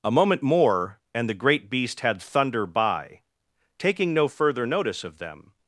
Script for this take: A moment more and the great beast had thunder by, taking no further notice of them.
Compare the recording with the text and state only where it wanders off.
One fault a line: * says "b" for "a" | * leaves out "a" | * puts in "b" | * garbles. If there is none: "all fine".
all fine